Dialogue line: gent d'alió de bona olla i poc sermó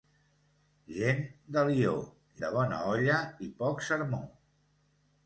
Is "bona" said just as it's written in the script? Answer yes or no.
yes